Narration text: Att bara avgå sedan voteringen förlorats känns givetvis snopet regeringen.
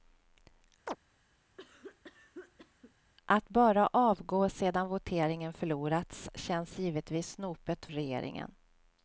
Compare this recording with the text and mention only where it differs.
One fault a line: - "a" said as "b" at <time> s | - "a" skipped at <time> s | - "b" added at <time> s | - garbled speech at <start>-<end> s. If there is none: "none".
none